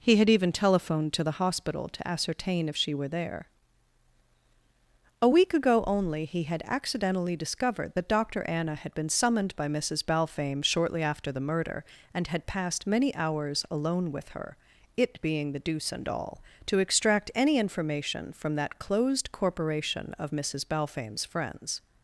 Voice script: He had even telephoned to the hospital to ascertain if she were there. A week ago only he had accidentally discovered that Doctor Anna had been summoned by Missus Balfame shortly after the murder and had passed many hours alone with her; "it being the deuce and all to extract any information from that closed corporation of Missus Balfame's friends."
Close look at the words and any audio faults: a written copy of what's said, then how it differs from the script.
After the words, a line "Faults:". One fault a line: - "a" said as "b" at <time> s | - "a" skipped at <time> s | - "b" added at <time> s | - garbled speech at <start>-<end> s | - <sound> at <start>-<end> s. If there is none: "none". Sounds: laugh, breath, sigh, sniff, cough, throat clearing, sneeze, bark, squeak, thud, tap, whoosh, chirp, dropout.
He had even telephoned to the hospital to ascertain if she were there. A week ago only he had accidentally discovered that Doctor Anna had been summoned by Missus Balfame shortly after the murder and had passed many hours alone with her; "it being the deuce and all to extract any information from that closed corporation of Missus Balfame's friends."
Faults:
none